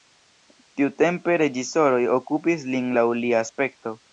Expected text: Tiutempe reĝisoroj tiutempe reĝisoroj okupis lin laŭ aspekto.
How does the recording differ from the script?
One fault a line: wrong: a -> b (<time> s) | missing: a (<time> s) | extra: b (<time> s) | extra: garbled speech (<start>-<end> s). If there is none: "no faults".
missing: tiutempe reĝisoroj (2.0 s)
extra: lia (3.2 s)